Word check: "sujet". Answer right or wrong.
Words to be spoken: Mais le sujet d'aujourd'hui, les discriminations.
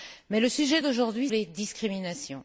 right